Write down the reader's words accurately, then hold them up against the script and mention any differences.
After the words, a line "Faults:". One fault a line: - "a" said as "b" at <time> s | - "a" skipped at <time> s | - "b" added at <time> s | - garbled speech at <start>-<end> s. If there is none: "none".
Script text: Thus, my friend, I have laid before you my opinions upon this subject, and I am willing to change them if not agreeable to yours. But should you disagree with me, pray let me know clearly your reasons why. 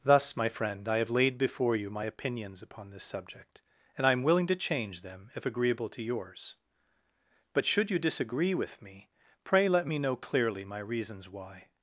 Thus, my friend, I have laid before you my opinions upon this subject, and I am willing to change them if agreeable to yours. But should you disagree with me, pray let me know clearly my reasons why.
Faults:
- "not" skipped at 5.4 s
- "your" said as "my" at 10.6 s